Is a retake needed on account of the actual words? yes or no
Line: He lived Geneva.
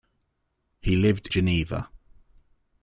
no